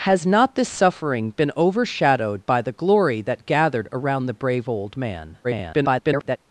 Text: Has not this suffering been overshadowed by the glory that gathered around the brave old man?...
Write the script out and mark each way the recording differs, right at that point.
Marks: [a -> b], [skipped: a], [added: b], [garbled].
Has not this suffering been overshadowed by the glory that gathered around the brave old man?... [garbled]